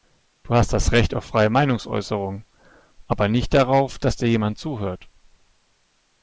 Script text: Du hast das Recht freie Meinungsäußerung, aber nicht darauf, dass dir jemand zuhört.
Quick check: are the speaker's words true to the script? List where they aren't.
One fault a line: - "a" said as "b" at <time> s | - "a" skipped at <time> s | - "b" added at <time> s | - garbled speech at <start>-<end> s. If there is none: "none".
- "auf" added at 1.1 s